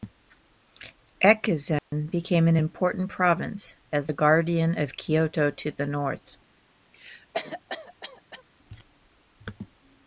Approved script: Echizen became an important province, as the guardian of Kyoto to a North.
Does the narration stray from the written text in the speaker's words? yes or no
yes